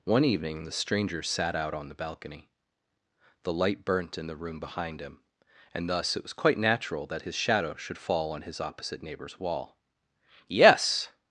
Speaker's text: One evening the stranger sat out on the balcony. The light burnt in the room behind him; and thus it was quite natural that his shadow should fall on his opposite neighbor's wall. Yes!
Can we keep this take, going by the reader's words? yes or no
yes